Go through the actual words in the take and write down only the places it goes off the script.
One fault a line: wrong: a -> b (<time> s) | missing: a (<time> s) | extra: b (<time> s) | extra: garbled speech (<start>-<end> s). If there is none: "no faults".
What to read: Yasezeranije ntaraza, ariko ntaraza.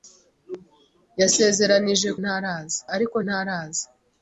no faults